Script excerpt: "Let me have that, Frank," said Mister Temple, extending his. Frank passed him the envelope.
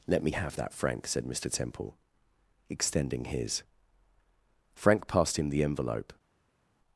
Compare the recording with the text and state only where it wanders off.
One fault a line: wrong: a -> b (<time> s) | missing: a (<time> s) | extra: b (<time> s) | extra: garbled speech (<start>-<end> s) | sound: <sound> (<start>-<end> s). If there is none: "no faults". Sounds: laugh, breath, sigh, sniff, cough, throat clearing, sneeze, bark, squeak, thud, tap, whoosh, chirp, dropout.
no faults